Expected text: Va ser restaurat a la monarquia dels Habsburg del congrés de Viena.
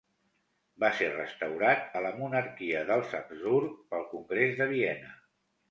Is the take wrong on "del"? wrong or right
wrong